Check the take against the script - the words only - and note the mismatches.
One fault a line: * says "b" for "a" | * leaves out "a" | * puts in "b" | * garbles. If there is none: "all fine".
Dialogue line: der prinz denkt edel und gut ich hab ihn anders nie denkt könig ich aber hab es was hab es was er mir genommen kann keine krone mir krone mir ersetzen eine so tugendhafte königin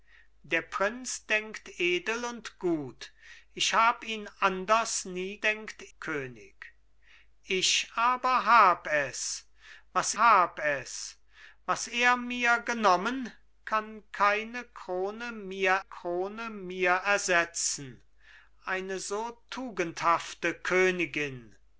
all fine